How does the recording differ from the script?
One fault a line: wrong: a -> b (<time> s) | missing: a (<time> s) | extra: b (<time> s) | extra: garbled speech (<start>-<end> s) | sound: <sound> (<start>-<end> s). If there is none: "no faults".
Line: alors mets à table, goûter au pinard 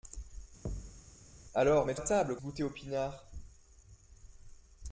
sound: thud (0.7-1.0 s)